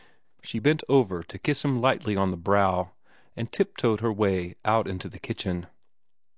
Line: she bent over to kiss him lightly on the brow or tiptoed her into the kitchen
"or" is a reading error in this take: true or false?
true